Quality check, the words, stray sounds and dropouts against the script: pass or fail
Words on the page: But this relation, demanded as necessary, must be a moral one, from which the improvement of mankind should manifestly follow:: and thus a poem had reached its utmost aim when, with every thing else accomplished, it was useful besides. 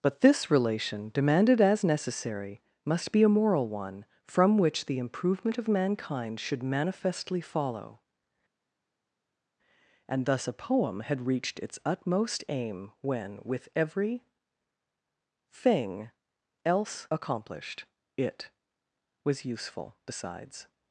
pass